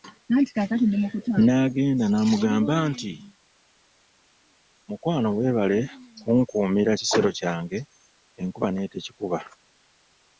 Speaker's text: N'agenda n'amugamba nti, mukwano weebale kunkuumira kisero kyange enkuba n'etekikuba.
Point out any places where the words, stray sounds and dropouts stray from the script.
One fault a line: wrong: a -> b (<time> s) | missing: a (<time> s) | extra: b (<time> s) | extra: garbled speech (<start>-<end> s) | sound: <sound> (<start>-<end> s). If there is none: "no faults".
no faults